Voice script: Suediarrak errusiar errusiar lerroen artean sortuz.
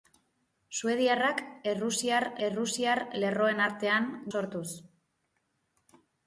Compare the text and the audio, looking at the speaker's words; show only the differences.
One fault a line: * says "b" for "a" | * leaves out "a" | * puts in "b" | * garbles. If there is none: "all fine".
all fine